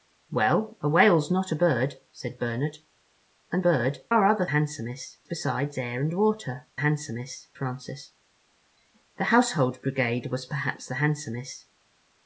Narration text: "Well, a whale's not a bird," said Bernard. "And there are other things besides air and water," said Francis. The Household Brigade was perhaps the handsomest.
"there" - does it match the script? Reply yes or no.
no